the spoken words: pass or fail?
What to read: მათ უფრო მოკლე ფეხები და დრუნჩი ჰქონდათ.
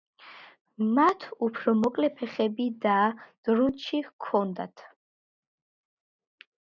pass